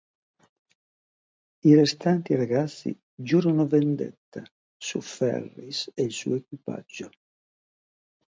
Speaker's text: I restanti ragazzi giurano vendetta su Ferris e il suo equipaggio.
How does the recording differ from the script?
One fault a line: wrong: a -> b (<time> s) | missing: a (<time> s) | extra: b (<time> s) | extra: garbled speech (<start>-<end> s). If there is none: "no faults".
no faults